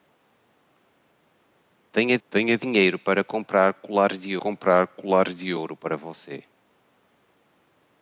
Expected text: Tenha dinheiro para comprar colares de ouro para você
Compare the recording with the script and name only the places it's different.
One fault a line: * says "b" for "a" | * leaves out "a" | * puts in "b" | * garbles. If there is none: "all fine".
* puts in "tenha"
* puts in "comprar colares de"